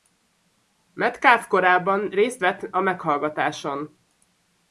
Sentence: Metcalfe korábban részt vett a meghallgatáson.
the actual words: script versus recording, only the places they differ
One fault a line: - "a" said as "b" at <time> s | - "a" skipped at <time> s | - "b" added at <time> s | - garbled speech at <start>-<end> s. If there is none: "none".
none